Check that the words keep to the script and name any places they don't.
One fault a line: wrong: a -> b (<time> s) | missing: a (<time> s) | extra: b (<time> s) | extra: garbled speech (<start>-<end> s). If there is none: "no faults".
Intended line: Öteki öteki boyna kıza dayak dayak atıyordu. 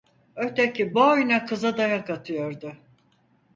missing: öteki (1.0 s)
missing: dayak (2.1 s)